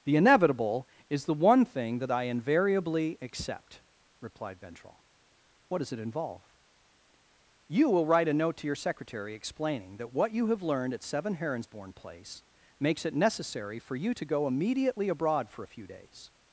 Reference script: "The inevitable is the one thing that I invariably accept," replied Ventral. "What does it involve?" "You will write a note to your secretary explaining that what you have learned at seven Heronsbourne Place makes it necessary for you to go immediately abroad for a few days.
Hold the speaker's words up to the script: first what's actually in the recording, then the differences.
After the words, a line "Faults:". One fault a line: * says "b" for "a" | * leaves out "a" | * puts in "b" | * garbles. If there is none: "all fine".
"The inevitable is the one thing that I invariably accept," replied Ventral. "What does it involve?" "You will write a note to your secretary explaining that what you have learned at seven Heronsbourne Place makes it necessary for you to go immediately abroad for a few days.
Faults:
all fine